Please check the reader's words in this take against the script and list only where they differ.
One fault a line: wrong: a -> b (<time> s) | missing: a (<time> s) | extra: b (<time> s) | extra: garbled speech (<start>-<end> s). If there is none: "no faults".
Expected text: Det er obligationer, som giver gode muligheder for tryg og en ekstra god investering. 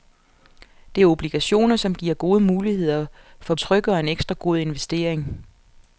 no faults